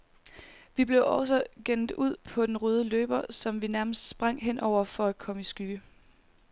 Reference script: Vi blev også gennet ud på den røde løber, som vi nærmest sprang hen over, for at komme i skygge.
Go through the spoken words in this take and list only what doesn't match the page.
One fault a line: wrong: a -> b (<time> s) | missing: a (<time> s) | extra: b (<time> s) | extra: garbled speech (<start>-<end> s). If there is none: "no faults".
no faults